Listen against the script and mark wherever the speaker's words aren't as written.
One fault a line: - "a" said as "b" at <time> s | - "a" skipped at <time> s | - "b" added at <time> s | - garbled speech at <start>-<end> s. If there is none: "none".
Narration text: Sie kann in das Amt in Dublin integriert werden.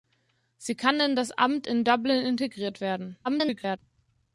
- garbled speech at 3.2-3.8 s